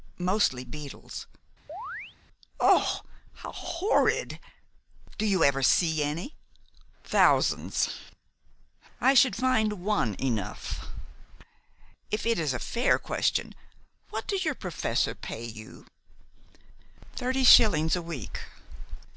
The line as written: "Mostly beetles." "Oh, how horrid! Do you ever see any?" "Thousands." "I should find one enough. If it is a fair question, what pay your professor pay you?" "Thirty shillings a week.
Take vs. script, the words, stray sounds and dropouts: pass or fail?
fail